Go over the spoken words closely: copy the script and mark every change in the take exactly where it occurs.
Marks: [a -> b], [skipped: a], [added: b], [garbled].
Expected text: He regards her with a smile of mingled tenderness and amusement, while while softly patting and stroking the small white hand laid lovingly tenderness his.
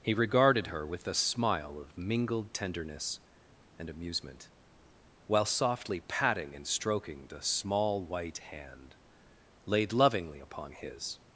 He [regards -> regarded] her with a smile of mingled tenderness and amusement, while [skipped: while] softly patting and stroking the small white hand laid lovingly [tenderness -> upon] his.